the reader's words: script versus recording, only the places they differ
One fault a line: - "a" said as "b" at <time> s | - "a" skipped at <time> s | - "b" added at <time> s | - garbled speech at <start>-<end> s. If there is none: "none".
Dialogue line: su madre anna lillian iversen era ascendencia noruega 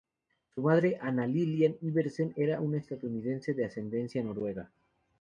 - "una estadounidense de" added at 2.6 s